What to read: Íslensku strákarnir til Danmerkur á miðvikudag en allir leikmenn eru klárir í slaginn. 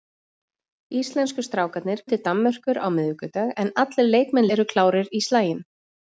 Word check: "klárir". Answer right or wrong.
right